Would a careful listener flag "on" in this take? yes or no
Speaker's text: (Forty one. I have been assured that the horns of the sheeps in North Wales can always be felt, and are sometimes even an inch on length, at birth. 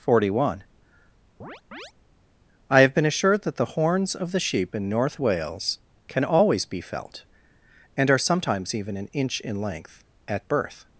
yes